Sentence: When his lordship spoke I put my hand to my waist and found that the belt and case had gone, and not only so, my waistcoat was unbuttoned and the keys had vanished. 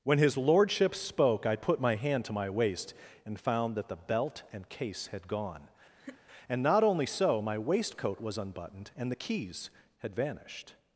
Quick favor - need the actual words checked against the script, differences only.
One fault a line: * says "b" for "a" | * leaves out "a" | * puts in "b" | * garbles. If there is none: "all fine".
all fine